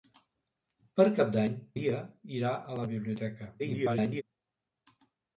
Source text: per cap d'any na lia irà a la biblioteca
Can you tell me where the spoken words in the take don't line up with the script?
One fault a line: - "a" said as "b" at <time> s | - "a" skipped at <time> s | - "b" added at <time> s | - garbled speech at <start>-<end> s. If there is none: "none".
- "na" skipped at 1.6 s
- garbled speech at 3.6-4.2 s